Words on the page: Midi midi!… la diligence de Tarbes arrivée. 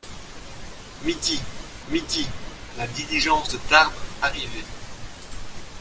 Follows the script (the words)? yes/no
yes